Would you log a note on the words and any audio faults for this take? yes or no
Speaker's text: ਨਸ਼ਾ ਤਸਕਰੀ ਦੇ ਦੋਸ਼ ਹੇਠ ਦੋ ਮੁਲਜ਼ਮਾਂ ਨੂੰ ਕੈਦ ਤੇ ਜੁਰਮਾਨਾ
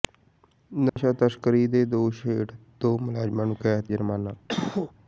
yes